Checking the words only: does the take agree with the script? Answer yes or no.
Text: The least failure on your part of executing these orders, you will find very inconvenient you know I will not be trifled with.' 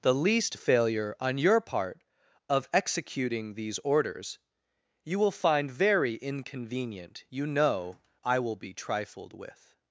no